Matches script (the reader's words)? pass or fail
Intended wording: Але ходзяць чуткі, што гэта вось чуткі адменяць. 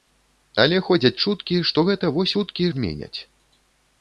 pass